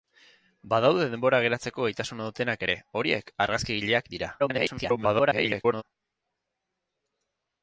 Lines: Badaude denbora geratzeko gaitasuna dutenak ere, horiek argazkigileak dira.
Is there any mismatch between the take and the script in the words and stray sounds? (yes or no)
yes